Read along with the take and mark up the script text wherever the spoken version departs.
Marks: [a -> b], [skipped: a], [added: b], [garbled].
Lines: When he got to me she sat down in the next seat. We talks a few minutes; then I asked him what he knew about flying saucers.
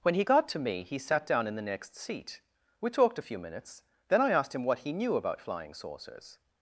When he got to me [she -> he] sat down in the next seat. We [talks -> talked] a few minutes; then I asked him what he knew about flying saucers.